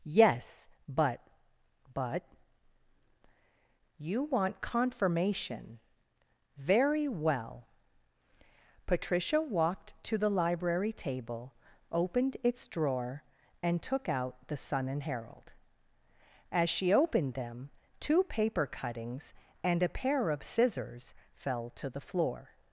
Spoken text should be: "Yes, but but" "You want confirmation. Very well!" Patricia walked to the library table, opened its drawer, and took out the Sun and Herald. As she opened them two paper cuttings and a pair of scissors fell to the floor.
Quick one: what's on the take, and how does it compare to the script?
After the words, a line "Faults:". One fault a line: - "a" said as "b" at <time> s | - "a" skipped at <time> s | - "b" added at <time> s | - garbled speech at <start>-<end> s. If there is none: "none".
"Yes, but but" "You want confirmation. Very well!" Patricia walked to the library table, opened its drawer, and took out the Sun and Herald. As she opened them two paper cuttings and a pair of scissors fell to the floor.
Faults:
none